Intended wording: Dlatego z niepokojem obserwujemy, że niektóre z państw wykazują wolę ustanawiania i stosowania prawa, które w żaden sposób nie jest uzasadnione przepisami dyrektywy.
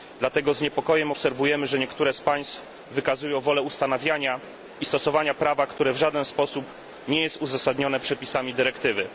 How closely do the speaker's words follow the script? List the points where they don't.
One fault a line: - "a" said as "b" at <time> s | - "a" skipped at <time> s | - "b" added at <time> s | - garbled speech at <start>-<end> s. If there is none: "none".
none